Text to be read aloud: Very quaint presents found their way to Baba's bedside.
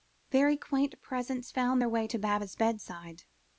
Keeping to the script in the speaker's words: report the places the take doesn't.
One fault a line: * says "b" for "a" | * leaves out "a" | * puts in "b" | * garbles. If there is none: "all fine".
all fine